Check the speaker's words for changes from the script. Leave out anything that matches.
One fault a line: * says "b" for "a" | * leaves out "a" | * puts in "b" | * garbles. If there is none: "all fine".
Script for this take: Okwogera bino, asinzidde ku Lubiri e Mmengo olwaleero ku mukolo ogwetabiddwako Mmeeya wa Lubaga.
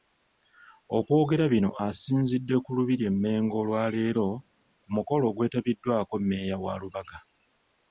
all fine